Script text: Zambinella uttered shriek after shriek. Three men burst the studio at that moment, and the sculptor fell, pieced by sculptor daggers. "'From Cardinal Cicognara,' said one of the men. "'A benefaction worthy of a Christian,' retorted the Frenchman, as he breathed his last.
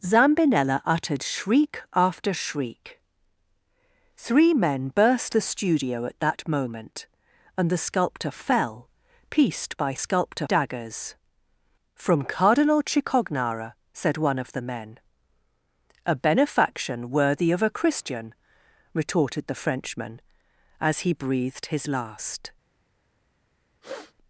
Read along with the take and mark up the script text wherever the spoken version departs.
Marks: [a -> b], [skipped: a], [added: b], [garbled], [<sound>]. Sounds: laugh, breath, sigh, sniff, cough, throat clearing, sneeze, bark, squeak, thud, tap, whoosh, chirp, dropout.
Zambinella uttered shriek after shriek. Three men burst the studio at that moment, and the sculptor fell, pieced by sculptor daggers. "'From Cardinal Cicognara,' said one of the men. "'A benefaction worthy of a Christian,' retorted the Frenchman, as he breathed his last. [sniff]